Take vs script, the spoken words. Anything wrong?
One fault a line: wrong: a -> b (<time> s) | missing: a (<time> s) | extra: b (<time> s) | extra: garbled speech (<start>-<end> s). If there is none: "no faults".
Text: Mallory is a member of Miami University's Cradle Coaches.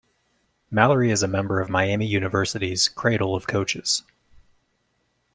extra: of (3.3 s)